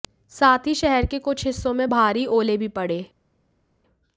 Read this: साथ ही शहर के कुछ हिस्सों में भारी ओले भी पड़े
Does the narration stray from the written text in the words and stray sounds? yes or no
no